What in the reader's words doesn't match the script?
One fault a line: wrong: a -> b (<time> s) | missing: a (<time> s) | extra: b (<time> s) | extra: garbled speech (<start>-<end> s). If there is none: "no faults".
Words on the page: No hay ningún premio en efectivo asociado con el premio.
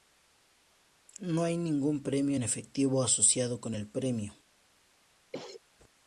no faults